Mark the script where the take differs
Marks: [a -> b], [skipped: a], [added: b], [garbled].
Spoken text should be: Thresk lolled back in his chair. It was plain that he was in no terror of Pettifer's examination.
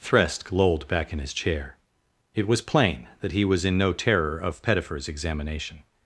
Thresk lolled back in his chair. It was plain that he was in no terror of Pettifer's examination.